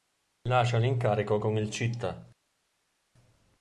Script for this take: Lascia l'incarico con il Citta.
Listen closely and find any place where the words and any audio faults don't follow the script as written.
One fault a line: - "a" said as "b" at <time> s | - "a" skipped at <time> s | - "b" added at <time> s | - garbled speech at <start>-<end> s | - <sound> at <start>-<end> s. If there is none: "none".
none